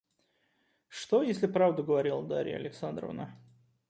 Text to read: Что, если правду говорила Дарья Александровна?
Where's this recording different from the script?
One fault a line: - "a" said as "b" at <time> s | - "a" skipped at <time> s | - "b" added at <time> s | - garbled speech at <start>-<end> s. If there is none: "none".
none